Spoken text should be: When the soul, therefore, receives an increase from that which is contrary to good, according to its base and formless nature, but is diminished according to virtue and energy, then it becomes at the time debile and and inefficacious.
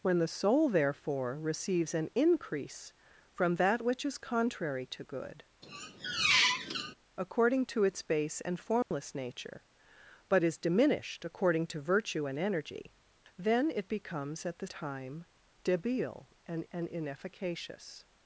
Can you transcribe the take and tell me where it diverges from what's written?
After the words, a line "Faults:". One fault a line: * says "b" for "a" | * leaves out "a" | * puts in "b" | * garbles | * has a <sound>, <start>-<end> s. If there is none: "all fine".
When the soul, therefore, receives an increase from that which is contrary to good, according to its base and formless nature, but is diminished according to virtue and energy, then it becomes at the time debile and and inefficacious.
Faults:
* has a squeak, 5.6-6.9 s
* has a dropout, 8.8-8.9 s